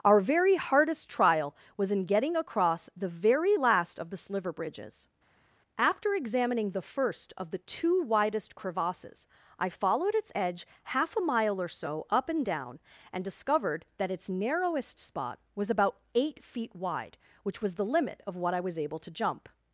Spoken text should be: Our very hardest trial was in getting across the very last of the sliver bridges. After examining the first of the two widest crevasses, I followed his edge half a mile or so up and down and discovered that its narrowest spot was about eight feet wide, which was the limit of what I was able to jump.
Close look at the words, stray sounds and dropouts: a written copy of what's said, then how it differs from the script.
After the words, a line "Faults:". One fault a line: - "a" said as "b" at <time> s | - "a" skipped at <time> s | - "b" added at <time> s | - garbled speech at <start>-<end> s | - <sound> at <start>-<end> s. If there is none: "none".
Our very hardest trial was in getting across the very last of the sliver bridges. After examining the first of the two widest crevasses, I followed its edge half a mile or so up and down and discovered that its narrowest spot was about eight feet wide, which was the limit of what I was able to jump.
Faults:
- "his" said as "its" at 10.1 s